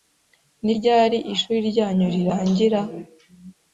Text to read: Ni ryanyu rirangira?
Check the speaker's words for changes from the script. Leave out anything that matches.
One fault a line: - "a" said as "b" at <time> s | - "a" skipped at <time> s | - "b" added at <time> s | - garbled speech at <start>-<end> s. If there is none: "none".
- "ryari ishuri" added at 0.8 s